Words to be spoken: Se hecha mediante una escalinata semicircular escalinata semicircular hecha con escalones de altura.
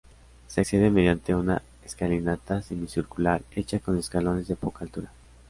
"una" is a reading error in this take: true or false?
false